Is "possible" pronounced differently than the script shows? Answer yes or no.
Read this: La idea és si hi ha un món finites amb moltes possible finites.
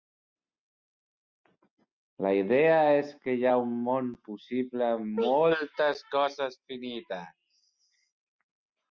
yes